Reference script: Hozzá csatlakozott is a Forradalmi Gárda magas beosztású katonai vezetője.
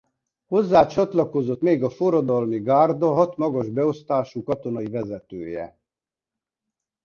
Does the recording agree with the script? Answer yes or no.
no